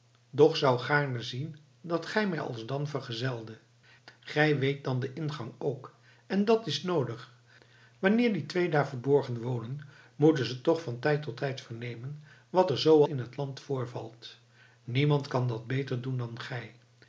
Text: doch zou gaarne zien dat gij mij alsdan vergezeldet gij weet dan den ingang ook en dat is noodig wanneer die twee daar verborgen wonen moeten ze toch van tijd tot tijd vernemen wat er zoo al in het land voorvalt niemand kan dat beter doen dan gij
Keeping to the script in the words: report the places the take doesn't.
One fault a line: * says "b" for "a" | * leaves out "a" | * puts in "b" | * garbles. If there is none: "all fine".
* leaves out "al"